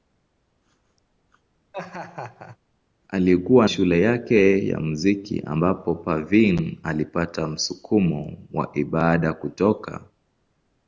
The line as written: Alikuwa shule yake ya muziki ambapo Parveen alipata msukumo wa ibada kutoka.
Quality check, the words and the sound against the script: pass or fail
fail